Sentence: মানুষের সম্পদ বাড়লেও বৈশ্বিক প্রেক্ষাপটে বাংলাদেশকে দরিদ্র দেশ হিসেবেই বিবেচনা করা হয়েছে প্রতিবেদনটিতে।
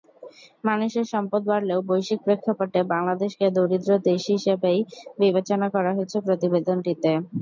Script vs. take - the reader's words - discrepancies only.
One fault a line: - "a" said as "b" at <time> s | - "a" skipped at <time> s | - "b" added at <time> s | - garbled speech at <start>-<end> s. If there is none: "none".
none